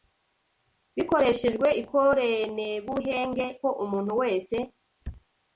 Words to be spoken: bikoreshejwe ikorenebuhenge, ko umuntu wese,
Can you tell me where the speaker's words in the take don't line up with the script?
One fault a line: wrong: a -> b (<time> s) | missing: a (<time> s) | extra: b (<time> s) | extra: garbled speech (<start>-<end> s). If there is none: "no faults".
no faults